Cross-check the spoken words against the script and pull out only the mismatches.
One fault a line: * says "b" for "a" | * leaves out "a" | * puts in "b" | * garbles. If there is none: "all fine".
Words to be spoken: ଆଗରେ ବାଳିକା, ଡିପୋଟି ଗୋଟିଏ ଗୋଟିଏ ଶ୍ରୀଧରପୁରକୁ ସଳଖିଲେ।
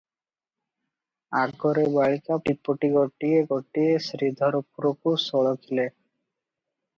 all fine